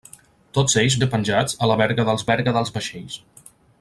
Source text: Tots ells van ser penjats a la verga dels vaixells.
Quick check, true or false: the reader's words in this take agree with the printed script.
false